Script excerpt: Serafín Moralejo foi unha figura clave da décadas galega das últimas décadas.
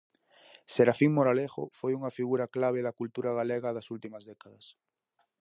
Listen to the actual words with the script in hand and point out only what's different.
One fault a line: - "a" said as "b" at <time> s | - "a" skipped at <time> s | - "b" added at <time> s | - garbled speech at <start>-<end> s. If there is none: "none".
- "décadas" said as "cultura" at 3.0 s